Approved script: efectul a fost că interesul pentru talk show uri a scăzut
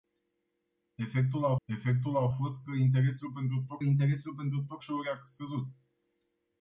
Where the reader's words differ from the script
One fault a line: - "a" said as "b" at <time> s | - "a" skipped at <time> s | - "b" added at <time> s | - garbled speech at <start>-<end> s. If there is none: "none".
- "efectul a" added at 1.6 s
- "interesul pentru talk" added at 3.9 s